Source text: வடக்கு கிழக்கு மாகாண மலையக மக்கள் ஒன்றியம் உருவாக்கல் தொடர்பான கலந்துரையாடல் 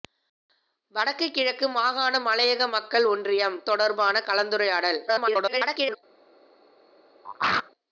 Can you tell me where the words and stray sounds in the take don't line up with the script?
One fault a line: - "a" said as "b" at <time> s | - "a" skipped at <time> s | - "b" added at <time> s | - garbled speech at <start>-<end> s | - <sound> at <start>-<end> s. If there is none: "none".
- "உருவாக்கல்" skipped at 3.6 s
- garbled speech at 5.1-6.0 s
- throat clearing at 7.2-7.7 s